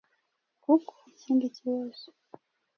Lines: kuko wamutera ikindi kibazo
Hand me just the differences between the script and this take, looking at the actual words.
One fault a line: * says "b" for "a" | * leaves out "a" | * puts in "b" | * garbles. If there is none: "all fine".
* leaves out "wamutera"